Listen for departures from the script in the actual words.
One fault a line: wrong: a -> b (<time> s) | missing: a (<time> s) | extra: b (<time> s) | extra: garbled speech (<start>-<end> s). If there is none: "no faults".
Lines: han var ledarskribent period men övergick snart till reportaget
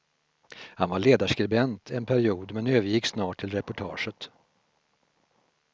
extra: en (1.9 s)